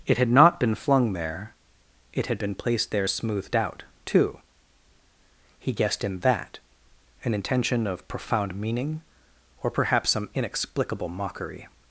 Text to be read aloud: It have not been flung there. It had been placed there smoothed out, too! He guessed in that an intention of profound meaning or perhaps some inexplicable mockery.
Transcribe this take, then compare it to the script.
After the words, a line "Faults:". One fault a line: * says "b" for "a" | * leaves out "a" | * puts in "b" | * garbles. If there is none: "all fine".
It had not been flung there. It had been placed there smoothed out, too! He guessed in that an intention of profound meaning or perhaps some inexplicable mockery.
Faults:
* says "had" for "have"